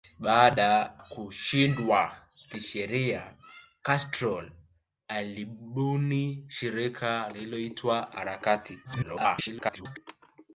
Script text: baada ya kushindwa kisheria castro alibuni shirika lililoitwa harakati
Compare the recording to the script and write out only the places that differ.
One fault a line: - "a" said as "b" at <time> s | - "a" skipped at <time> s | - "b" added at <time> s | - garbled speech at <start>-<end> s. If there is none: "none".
- "ya" skipped at 0.9 s
- garbled speech at 8.8-10.0 s